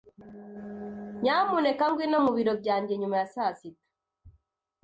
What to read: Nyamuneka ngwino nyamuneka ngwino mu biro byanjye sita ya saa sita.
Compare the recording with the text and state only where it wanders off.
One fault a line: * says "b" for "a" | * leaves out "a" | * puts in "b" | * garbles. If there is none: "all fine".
* leaves out "nyamuneka ngwino"
* says "nyuma" for "sita"